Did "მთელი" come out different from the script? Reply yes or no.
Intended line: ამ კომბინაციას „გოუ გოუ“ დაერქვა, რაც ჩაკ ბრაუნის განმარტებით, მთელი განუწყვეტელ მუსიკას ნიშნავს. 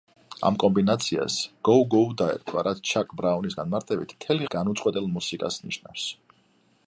no